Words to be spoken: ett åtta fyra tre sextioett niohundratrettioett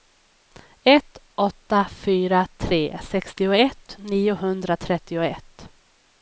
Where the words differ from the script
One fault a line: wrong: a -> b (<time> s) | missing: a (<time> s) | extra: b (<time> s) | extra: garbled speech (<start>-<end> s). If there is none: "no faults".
no faults